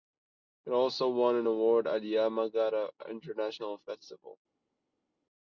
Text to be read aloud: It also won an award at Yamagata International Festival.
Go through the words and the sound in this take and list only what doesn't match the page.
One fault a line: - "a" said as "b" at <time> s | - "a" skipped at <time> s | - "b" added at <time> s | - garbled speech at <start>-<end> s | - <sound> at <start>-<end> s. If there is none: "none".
none